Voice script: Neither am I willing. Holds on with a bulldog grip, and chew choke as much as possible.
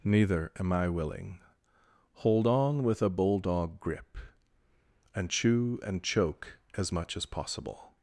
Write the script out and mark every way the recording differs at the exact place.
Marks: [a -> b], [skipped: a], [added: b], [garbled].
Neither am I willing. [Holds -> Hold] on with a bulldog grip, and chew [added: and] choke as much as possible.